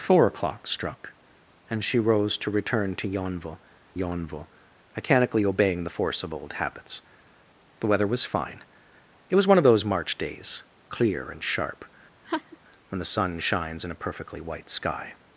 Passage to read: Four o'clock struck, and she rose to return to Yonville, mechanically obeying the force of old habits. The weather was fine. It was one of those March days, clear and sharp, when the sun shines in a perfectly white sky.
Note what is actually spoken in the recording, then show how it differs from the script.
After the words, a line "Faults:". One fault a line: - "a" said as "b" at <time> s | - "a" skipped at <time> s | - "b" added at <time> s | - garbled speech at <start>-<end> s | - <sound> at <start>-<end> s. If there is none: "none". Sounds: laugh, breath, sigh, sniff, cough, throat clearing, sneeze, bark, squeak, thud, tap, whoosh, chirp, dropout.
Four o'clock struck, and she rose to return to Yonville Yonville, mechanically obeying the force of old habits. The weather was fine. It was one of those March days, clear and sharp, when the sun shines in a perfectly white sky.
Faults:
- "Yonville" added at 3.9 s
- laugh at 12.2-12.6 s